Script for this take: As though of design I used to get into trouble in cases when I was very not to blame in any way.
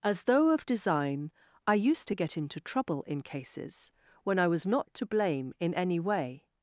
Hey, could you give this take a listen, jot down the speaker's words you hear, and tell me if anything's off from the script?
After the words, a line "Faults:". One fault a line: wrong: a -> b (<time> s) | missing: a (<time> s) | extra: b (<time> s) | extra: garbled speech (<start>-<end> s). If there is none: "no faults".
As though of design I used to get into trouble in cases when I was not to blame in any way.
Faults:
missing: very (4.6 s)